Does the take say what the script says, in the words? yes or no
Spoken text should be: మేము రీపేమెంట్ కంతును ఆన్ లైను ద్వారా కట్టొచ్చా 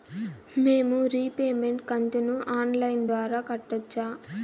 yes